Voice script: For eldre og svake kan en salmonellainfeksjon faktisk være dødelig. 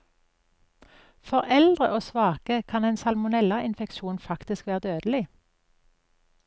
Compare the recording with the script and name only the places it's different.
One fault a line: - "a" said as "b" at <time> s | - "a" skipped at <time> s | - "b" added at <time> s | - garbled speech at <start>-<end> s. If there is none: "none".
none